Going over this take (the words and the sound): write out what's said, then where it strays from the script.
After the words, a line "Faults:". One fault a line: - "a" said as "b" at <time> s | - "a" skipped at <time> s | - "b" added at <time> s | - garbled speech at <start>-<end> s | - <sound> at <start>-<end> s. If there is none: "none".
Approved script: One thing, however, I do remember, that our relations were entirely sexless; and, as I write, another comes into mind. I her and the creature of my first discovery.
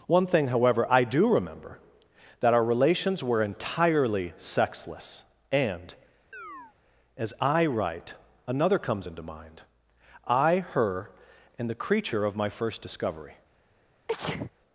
One thing, however, I do remember, that our relations were entirely sexless; and, as I write, another comes into mind. I her and the creature of my first discovery.
Faults:
- chirp at 6.3-6.7 s
- sneeze at 14.1-14.5 s